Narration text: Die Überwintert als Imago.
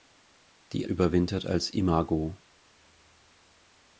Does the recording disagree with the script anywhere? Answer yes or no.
no